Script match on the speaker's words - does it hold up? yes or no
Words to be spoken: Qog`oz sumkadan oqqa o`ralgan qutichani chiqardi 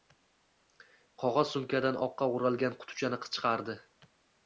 yes